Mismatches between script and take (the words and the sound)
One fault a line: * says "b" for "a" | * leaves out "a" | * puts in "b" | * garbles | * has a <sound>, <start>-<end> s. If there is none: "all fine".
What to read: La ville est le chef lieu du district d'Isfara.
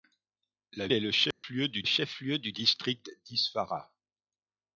* leaves out "ville"
* has a dropout, 1.3-1.4 s
* puts in "chef lieu du"